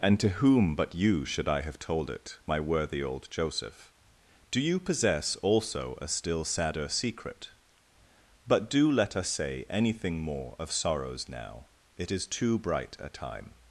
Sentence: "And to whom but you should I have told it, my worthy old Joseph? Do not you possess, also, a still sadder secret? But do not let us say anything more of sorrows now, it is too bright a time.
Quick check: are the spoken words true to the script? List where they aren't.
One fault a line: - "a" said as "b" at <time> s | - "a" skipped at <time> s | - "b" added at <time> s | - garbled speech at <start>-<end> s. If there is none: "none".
- "not" skipped at 4.6 s
- "not" skipped at 8.9 s